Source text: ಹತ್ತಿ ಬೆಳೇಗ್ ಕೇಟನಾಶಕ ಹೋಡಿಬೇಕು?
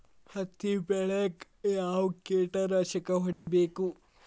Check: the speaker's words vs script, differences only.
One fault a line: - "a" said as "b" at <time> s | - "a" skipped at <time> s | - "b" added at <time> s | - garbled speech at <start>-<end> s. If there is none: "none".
- "ಯಾವ್" added at 1.7 s